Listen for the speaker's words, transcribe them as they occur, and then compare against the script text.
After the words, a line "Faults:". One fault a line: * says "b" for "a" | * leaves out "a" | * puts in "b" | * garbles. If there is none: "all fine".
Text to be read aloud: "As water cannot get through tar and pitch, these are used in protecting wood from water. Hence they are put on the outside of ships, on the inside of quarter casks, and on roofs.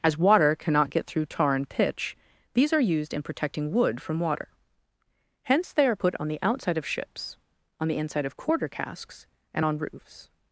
"As water cannot get through tar and pitch, these are used in protecting wood from water. Hence they are put on the outside of ships, on the inside of quarter casks, and on roofs.
Faults:
all fine